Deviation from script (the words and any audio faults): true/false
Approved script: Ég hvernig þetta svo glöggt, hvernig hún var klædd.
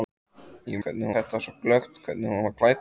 false